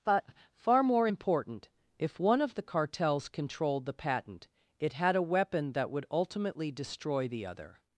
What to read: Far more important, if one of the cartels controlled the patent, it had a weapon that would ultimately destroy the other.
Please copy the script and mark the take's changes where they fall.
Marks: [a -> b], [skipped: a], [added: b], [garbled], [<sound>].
[added: but] Far more important, if one of the cartels controlled the patent, it had a weapon that would ultimately destroy the other.